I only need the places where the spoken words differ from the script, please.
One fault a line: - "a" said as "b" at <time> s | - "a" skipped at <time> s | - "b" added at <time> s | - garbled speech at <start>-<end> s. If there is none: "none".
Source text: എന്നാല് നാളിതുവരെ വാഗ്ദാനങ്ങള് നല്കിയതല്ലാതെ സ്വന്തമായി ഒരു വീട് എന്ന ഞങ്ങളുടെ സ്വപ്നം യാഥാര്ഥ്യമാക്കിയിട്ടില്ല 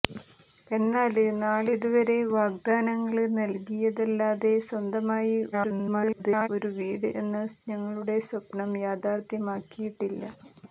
- garbled speech at 5.5-6.5 s